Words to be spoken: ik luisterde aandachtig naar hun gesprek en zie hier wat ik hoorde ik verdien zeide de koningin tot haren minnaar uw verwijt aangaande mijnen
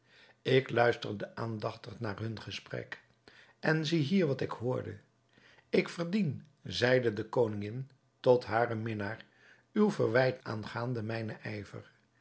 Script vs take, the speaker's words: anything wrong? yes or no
no